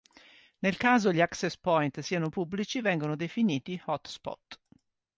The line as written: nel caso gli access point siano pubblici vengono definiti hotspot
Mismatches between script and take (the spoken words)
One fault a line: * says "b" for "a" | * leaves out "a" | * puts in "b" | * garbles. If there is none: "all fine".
all fine